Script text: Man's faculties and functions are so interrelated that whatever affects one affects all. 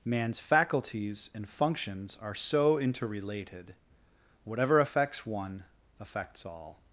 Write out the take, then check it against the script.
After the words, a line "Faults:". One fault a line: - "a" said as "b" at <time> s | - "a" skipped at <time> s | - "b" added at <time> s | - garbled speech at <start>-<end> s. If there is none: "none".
Man's faculties and functions are so interrelated whatever affects one affects all.
Faults:
- "that" skipped at 3.8 s